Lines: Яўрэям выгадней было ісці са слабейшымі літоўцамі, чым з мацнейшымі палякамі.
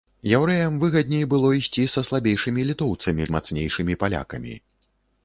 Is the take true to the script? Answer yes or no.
no